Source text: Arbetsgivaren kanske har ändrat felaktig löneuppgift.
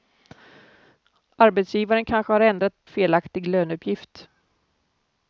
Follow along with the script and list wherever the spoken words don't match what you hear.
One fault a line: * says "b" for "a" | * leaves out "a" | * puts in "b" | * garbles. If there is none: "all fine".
all fine